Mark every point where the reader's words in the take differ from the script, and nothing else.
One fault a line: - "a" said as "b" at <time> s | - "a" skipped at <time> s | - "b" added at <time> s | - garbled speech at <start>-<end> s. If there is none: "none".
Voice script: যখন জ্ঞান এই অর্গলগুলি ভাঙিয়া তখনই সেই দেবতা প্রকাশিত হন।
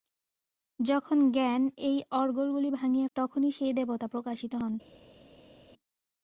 none